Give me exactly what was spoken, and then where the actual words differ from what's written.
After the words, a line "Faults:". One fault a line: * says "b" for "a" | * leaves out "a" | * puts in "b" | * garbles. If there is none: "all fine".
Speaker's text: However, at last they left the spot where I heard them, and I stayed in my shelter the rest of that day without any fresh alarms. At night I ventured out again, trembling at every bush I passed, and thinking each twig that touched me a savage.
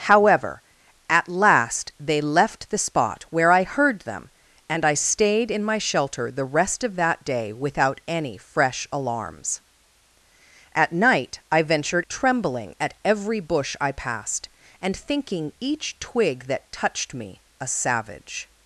However, at last they left the spot where I heard them, and I stayed in my shelter the rest of that day without any fresh alarms. At night I ventured trembling at every bush I passed, and thinking each twig that touched me a savage.
Faults:
* leaves out "out again"